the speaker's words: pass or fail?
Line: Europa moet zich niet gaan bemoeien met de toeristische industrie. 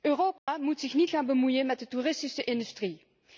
pass